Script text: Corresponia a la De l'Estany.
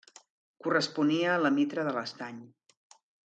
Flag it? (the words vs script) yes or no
yes